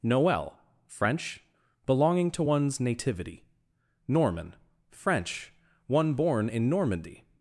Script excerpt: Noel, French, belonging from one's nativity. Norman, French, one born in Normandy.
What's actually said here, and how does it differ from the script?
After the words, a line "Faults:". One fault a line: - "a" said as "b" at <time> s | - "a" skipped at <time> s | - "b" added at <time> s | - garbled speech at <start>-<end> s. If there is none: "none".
Noel, French, belonging to one's nativity. Norman, French, one born in Normandy.
Faults:
- "from" said as "to" at 2.3 s